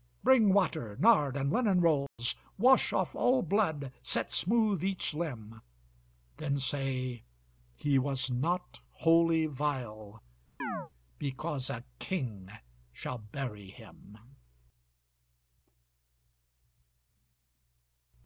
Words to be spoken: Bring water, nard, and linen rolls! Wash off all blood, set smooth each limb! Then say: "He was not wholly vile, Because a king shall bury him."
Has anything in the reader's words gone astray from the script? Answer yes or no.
no